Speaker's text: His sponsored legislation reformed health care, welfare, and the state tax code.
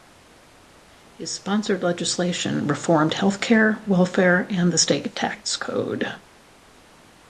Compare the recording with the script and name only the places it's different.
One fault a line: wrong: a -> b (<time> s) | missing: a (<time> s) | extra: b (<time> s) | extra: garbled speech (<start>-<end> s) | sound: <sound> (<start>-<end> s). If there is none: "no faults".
no faults